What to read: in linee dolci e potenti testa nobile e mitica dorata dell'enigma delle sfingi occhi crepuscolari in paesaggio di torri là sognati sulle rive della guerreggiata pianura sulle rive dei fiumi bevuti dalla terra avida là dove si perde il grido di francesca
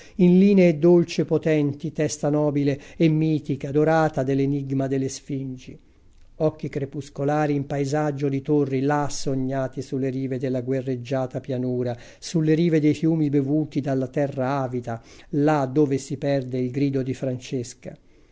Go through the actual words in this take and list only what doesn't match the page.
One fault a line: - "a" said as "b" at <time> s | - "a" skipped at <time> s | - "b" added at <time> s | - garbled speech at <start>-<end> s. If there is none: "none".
none